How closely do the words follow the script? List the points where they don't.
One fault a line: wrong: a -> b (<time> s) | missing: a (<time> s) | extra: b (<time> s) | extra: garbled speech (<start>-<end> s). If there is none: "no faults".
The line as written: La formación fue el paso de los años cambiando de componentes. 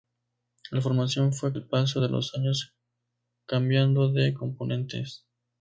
no faults